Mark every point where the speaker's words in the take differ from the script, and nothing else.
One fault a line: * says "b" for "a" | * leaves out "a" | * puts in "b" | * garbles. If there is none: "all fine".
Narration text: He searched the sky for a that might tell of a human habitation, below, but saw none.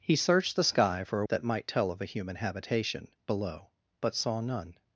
all fine